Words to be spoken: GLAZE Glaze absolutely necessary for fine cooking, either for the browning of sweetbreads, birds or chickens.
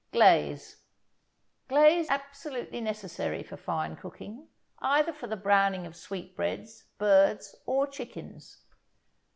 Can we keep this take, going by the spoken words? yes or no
yes